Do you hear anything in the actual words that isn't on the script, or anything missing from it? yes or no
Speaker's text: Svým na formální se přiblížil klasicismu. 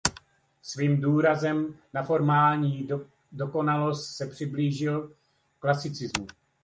yes